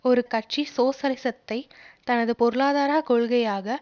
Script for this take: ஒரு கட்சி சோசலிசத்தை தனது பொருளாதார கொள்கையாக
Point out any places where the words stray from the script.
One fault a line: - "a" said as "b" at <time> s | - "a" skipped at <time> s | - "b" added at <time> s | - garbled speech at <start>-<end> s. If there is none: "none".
none